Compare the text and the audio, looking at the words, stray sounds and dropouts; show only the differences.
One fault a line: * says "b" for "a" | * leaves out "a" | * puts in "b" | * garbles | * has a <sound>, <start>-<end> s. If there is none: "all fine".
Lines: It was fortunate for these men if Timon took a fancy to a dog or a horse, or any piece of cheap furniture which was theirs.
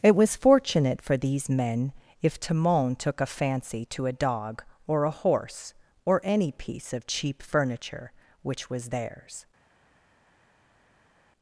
all fine